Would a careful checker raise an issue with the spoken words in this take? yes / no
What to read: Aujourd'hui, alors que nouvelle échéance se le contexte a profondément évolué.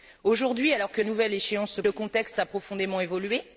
no